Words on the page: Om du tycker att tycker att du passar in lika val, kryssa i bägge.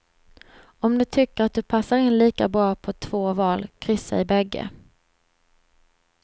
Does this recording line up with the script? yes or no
no